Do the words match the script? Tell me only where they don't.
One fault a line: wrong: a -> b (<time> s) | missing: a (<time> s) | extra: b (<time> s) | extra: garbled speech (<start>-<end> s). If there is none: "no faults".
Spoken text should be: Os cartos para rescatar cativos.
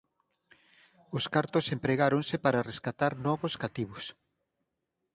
extra: empregáronse (1.8 s)
extra: novos (3.3 s)